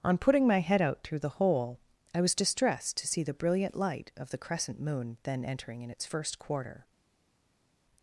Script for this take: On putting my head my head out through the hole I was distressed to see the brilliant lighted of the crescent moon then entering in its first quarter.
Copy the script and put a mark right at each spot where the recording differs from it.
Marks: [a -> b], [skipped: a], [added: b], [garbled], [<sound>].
On putting my head [skipped: my head] out through the hole I was distressed to see the brilliant [lighted -> light] of the crescent moon then entering in its first quarter.